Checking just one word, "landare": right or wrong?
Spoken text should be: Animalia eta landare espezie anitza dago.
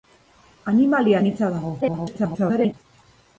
wrong